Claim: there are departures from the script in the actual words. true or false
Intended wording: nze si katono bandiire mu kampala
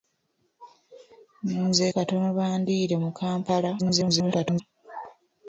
true